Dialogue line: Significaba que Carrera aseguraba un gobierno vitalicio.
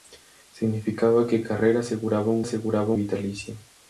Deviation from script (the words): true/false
true